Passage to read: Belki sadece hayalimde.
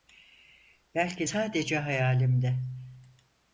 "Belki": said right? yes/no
yes